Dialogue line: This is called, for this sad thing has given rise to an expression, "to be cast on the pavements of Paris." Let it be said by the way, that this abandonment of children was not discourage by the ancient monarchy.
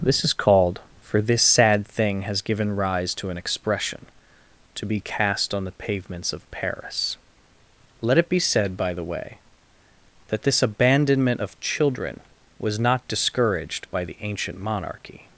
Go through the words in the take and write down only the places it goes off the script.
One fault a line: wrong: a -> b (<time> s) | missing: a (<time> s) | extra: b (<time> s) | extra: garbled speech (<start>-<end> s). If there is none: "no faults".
wrong: discourage -> discouraged (13.1 s)